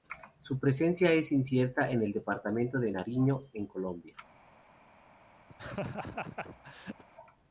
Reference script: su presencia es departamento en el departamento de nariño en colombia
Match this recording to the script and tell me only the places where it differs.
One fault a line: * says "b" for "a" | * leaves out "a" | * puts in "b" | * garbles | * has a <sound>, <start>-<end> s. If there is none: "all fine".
* says "incierta" for "departamento"
* has a laugh, 5.5-7.0 s